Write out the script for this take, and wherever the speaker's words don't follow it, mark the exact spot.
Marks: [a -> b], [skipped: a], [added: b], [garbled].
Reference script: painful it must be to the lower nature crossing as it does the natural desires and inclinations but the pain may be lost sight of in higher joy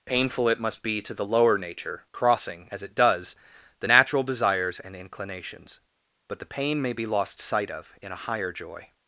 painful it must be to the lower nature crossing as it does the natural desires and inclinations but the pain may be lost sight of in [added: a] higher joy